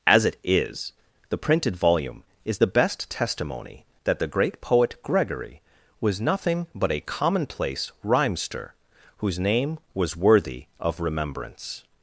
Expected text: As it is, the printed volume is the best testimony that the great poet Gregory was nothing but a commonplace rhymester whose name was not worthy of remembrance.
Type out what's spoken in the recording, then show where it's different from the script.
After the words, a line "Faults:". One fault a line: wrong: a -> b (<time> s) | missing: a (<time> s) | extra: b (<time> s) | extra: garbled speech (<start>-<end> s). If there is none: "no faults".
As it is, the printed volume is the best testimony that the great poet Gregory was nothing but a commonplace rhymester whose name was worthy of remembrance.
Faults:
missing: not (10.1 s)